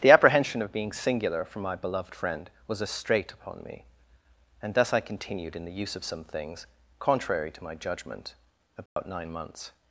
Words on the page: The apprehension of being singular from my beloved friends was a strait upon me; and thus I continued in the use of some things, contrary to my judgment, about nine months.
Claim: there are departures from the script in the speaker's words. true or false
true